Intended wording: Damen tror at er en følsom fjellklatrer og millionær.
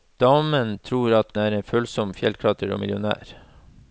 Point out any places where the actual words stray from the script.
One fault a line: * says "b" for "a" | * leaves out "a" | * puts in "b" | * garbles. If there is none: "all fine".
all fine